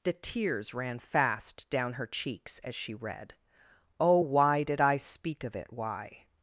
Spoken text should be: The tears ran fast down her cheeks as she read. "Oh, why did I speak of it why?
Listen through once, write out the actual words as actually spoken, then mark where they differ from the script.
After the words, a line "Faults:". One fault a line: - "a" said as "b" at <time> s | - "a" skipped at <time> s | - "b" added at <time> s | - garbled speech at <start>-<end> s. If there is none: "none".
The tears ran fast down her cheeks as she read. "Oh, why did I speak of it why?
Faults:
none